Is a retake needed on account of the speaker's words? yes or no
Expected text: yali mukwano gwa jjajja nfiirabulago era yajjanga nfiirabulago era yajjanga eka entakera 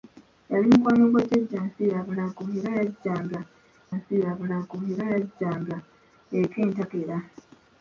no